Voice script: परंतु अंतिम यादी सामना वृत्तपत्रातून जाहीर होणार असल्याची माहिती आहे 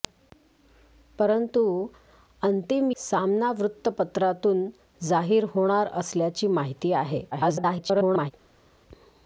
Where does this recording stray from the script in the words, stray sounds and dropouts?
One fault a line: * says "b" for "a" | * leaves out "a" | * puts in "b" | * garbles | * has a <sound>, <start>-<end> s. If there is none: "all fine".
* leaves out "यादी"
* garbles